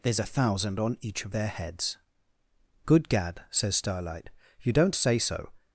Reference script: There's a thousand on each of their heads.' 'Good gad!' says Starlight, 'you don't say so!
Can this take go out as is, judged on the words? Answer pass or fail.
pass